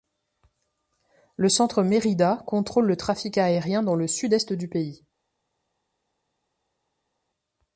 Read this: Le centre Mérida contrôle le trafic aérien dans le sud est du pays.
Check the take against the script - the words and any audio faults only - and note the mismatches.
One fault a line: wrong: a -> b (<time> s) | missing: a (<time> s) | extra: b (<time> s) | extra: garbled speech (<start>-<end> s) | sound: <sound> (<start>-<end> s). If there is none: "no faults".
no faults